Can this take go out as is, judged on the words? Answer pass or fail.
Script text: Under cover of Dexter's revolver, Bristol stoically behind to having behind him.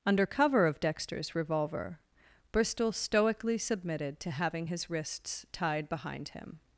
fail